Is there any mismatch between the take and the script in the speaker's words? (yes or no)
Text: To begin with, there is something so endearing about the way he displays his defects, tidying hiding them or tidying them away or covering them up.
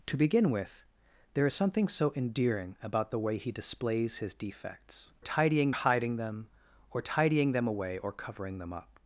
no